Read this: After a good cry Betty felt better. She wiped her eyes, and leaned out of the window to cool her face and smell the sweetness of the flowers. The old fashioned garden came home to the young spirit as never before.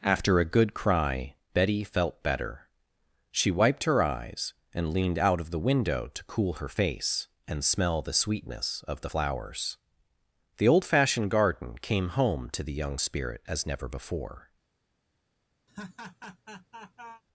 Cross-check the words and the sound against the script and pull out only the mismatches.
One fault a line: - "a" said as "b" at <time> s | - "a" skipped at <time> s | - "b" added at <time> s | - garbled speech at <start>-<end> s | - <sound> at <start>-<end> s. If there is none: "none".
- laugh at 15.7-17.2 s